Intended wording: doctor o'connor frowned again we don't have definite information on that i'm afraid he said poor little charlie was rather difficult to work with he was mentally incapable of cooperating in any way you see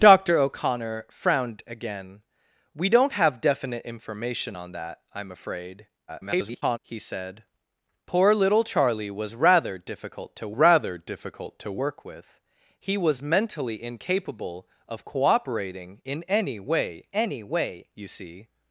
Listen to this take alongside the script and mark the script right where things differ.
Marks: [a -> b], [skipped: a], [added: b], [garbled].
doctor o'connor frowned again we don't have definite information on that i'm afraid [garbled] he said poor little charlie was rather difficult to [added: rather difficult to] work with he was mentally incapable of cooperating in any way [added: any way] you see